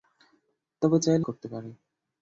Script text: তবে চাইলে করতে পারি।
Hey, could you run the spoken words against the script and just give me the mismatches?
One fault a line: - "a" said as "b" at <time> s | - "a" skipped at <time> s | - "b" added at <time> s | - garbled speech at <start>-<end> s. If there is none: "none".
none